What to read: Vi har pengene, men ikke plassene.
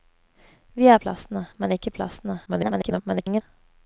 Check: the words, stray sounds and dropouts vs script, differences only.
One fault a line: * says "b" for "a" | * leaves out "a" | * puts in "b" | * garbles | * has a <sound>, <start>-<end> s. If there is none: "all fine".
* says "plassene" for "pengene"
* garbles